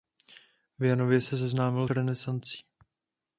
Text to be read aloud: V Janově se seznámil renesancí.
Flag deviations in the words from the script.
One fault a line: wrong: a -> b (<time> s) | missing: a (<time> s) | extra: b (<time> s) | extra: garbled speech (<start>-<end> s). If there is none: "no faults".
no faults